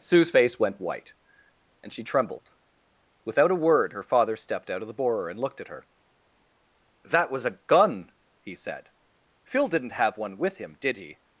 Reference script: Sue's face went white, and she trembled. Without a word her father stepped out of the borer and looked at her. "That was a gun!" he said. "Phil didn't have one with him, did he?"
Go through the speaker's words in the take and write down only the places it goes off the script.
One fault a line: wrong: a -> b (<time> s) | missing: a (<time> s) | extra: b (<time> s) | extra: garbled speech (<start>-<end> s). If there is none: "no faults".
no faults